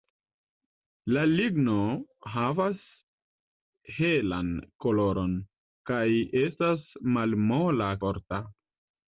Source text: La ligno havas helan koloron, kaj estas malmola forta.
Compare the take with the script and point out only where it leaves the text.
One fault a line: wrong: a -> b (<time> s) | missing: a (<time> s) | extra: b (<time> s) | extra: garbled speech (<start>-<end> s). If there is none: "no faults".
no faults